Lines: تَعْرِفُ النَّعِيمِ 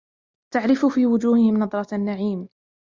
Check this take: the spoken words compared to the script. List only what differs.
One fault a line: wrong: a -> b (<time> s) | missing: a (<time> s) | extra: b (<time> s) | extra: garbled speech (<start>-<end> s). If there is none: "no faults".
extra: فِي وُجُوهِهِمْ نَضْرَةَ (0.8 s)